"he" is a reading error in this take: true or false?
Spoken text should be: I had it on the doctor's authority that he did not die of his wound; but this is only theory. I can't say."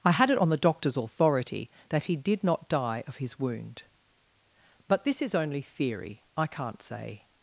false